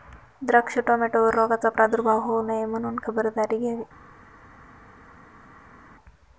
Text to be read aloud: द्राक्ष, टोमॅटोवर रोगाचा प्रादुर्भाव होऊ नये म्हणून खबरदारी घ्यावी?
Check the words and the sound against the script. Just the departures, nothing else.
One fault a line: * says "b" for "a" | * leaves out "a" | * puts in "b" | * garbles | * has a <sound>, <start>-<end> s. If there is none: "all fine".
all fine